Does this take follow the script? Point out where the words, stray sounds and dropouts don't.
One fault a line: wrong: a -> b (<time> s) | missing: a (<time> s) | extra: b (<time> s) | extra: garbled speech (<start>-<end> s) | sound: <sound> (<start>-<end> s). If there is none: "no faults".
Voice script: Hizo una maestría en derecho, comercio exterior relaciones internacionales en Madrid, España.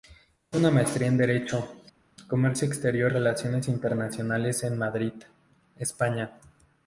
no faults